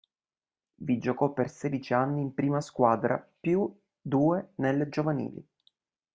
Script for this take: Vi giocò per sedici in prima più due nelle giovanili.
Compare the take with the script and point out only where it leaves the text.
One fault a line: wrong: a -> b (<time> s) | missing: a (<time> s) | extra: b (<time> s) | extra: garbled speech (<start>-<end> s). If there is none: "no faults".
extra: anni (1.9 s)
extra: squadra (2.6 s)